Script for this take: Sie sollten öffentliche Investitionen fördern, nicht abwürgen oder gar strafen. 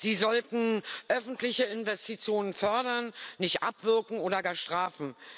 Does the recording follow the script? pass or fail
pass